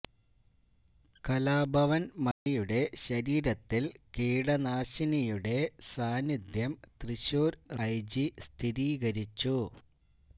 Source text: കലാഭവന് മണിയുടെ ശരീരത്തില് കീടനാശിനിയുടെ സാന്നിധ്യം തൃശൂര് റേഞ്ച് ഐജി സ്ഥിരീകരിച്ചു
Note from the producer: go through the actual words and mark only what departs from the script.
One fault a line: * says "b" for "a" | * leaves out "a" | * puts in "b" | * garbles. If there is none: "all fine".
* leaves out "റേഞ്ച്"